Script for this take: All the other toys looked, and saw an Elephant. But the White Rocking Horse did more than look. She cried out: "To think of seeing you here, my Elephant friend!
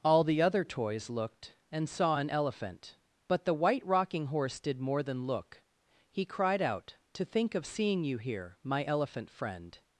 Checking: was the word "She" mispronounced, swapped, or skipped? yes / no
yes